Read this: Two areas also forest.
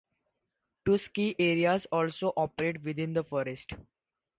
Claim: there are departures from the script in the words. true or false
true